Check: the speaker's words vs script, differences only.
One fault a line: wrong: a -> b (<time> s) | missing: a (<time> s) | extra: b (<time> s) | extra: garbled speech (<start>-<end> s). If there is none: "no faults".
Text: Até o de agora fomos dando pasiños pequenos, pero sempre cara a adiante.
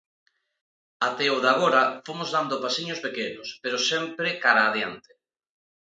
no faults